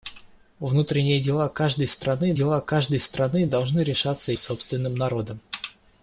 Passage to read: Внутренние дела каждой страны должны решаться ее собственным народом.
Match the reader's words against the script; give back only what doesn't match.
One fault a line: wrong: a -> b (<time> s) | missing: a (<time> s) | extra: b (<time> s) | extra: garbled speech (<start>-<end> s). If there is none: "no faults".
extra: дела каждой страны (2.3 s)
missing: ее (4.3 s)